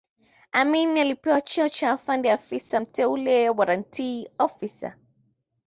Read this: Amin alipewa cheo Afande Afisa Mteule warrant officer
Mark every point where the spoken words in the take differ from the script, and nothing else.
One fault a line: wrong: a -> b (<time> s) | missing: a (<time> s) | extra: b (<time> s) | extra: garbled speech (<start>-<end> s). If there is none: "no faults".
extra: cha (1.7 s)